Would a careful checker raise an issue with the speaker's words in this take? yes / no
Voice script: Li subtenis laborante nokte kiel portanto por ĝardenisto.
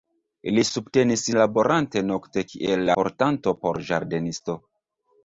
no